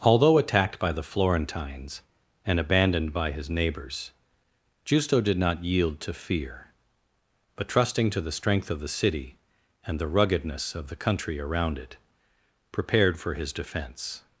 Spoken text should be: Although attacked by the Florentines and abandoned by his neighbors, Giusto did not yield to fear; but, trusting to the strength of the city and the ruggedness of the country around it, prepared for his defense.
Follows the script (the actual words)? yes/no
yes